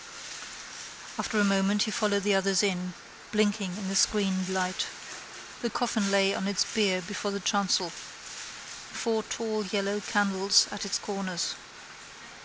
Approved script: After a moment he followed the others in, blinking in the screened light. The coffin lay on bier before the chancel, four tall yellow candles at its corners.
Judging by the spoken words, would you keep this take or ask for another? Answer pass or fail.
fail